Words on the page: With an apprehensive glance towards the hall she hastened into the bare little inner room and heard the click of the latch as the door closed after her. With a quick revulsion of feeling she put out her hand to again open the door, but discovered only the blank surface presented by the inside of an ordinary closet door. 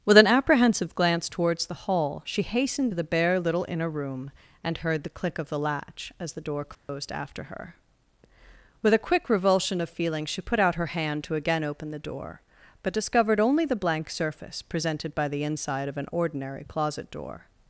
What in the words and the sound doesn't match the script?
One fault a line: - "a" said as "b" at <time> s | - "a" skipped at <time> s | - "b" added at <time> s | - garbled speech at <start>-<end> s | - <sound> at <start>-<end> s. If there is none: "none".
- "into" skipped at 2.9 s
- dropout at 6.7-6.9 s